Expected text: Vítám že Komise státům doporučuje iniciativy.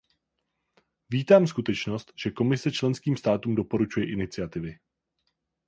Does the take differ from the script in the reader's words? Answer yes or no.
yes